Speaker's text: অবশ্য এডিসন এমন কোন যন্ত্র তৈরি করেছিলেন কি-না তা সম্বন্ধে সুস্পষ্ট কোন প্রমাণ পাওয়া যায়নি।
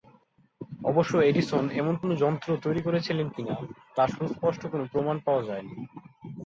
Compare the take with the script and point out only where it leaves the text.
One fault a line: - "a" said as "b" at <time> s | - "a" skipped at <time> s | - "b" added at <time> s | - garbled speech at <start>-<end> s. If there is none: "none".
- "সম্বন্ধে" skipped at 4.0 s